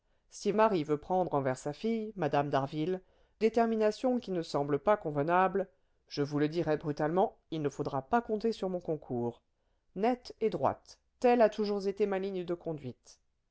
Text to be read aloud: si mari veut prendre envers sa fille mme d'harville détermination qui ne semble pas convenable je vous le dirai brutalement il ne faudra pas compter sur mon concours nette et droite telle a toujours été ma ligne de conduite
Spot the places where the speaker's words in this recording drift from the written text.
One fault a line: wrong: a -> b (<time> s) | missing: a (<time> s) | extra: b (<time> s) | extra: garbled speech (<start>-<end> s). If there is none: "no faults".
no faults